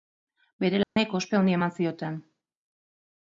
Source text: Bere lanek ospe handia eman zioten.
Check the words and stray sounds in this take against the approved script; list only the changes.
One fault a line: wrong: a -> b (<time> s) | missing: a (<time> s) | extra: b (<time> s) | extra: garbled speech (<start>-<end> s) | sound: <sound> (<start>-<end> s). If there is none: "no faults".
sound: dropout (0.8-1.0 s)